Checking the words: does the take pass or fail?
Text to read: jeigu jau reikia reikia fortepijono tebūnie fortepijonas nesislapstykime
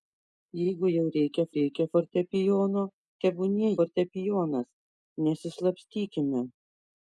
pass